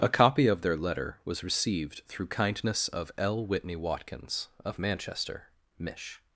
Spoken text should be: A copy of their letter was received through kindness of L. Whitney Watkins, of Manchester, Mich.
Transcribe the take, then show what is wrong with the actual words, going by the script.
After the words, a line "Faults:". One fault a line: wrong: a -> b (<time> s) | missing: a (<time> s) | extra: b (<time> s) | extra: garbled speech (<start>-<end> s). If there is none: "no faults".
A copy of their letter was received through kindness of L. Whitney Watkins, of Manchester, Mich.
Faults:
no faults